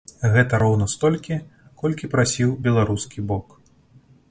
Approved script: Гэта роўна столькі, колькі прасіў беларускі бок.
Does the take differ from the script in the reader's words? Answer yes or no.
no